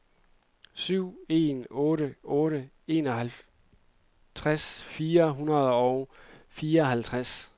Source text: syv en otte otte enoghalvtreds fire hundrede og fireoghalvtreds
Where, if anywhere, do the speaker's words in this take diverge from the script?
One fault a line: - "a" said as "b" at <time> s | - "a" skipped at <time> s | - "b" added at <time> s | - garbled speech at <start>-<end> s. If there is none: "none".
none